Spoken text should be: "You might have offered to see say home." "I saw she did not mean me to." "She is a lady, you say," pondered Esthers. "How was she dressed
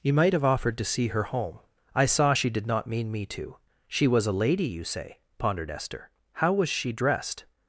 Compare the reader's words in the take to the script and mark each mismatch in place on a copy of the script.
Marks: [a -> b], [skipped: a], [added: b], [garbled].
"You might have offered to see [say -> her] home." "I saw she did not mean me to." "She [is -> was] a lady, you say," pondered [Esthers. -> Esther] "How was she dressed